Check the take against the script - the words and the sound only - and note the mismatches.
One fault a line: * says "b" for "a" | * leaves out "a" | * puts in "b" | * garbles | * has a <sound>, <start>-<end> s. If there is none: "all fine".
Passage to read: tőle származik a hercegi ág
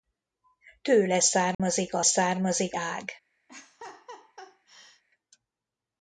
* has a dropout, 1.5-1.6 s
* says "származik" for "hercegi"
* has a laugh, 3.5-5.0 s